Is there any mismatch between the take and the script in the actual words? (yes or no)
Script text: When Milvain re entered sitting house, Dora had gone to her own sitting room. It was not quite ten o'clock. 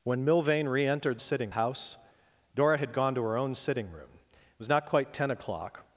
no